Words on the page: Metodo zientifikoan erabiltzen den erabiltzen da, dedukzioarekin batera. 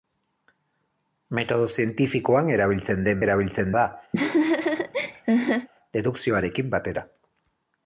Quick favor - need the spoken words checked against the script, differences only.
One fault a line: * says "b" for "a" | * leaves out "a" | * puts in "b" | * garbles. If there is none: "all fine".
all fine